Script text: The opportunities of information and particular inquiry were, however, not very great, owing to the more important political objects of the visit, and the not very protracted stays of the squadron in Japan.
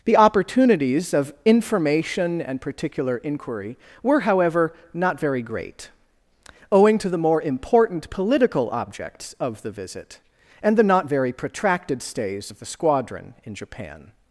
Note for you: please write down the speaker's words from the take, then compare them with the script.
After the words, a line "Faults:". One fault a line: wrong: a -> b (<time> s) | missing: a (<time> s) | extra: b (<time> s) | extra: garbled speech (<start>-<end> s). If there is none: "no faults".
The opportunities of information and particular inquiry were, however, not very great, owing to the more important political objects of the visit, and the not very protracted stays of the squadron in Japan.
Faults:
no faults